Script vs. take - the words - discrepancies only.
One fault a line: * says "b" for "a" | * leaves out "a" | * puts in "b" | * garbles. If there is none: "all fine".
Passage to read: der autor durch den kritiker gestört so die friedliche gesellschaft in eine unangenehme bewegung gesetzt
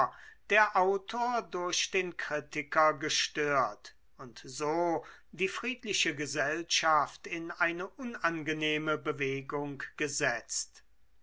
* puts in "und"